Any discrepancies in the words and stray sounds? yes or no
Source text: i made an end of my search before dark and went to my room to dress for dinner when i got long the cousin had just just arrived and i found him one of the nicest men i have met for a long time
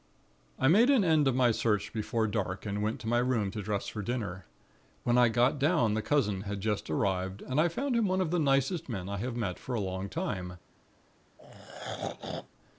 yes